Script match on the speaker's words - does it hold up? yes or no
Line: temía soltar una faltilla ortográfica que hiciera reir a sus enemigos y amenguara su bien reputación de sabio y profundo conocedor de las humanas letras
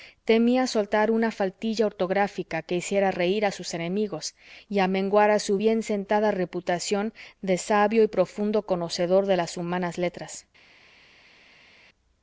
no